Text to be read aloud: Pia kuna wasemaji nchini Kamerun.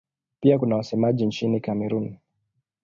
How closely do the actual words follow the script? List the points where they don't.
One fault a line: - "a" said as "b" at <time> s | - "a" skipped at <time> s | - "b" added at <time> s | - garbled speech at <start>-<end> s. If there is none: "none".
none